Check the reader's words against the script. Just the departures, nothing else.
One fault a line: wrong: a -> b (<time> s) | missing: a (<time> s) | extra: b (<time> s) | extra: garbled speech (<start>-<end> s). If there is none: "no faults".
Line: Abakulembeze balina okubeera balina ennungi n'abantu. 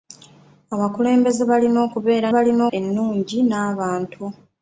no faults